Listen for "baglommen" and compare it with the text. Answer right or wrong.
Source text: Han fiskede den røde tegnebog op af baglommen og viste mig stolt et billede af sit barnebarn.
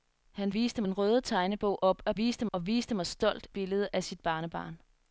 wrong